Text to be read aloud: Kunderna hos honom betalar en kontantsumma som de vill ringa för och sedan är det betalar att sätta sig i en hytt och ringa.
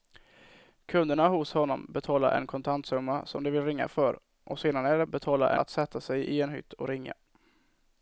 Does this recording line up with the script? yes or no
yes